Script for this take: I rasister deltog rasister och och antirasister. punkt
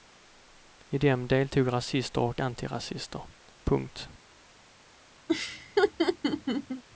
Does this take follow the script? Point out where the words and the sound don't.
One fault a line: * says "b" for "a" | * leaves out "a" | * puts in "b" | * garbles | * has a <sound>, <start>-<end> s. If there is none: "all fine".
* says "dem" for "rasister"
* leaves out "och"
* has a laugh, 5.3-6.8 s